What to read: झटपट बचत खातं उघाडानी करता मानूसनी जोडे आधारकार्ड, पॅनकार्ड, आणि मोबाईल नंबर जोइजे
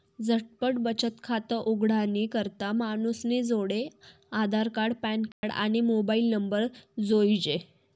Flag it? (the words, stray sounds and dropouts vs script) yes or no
yes